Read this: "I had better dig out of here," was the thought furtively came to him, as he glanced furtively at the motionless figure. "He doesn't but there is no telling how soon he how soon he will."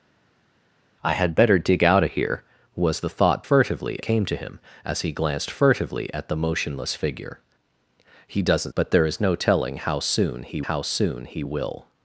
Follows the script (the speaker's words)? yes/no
yes